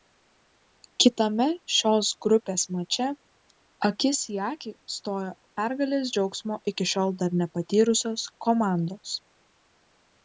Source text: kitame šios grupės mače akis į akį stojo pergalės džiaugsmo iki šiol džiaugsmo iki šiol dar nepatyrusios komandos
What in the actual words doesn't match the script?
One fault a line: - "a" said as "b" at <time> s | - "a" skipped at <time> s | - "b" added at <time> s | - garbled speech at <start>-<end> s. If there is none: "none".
- "džiaugsmo iki šiol" skipped at 7.2 s